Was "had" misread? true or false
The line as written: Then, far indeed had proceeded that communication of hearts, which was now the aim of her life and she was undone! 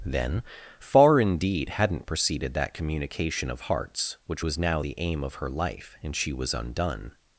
true